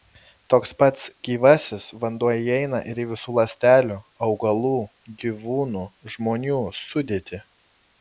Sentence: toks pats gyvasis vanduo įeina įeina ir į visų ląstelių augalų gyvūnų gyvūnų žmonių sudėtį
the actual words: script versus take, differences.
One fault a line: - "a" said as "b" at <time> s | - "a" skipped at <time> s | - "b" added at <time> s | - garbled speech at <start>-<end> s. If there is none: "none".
- "įeina" skipped at 2.8 s
- "gyvūnų" skipped at 5.9 s